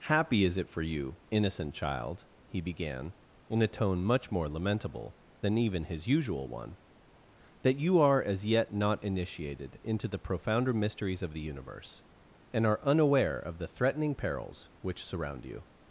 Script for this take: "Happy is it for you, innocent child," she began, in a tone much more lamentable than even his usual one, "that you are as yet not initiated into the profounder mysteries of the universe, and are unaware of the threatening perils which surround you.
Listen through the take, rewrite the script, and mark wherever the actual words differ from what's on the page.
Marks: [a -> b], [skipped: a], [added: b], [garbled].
"Happy is it for you, innocent child," [she -> he] began, in a tone much more lamentable than even his usual one, "that you are as yet not initiated into the profounder mysteries of the universe, and are unaware of the threatening perils which surround you.